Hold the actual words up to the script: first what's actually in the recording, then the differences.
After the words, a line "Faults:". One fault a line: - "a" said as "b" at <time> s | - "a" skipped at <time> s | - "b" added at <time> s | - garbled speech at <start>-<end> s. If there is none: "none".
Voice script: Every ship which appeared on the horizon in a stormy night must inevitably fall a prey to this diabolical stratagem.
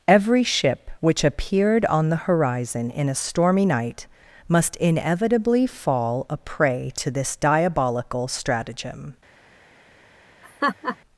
Every ship which appeared on the horizon in a stormy night must inevitably fall a prey to this diabolical stratagem.
Faults:
none